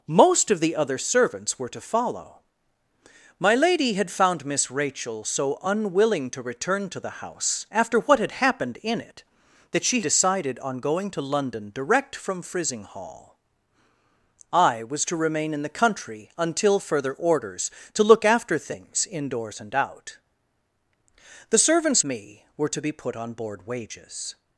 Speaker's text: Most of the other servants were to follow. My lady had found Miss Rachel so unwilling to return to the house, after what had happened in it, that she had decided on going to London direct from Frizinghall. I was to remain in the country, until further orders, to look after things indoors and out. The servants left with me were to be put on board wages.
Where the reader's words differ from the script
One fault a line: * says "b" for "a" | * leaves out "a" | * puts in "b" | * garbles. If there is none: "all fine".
* leaves out "had"
* leaves out "left with"